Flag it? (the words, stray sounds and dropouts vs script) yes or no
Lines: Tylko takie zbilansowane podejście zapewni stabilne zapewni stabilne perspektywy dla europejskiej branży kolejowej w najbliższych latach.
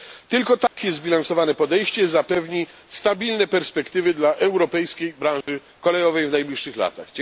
yes